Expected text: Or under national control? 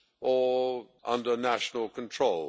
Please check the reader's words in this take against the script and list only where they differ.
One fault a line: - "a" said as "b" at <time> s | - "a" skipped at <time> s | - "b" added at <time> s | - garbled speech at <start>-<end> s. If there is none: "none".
none